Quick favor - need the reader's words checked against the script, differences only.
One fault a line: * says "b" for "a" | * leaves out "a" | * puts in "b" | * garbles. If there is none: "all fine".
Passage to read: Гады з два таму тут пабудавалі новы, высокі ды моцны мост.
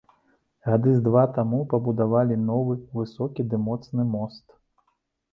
* leaves out "тут"